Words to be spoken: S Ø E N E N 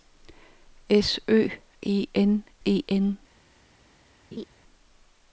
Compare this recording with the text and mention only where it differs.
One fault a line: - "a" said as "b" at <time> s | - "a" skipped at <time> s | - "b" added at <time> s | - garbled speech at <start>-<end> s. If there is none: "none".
none